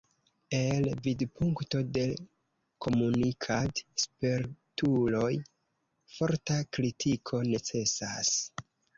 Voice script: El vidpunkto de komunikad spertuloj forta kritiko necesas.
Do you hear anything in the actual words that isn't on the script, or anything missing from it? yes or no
no